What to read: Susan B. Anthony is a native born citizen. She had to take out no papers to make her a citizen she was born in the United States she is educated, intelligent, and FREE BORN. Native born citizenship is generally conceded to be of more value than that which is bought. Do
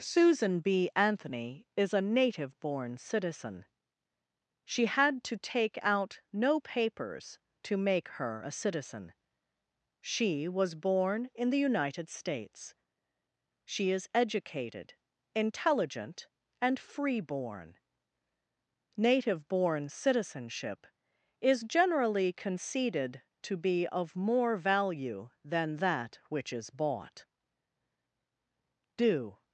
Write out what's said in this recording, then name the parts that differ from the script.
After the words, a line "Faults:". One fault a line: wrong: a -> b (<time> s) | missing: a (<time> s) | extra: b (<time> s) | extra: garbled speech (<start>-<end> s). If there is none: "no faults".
Susan B. Anthony is a native born citizen. She had to take out no papers to make her a citizen she was born in the United States she is educated, intelligent, and FREE BORN. Native born citizenship is generally conceded to be of more value than that which is bought. Do
Faults:
no faults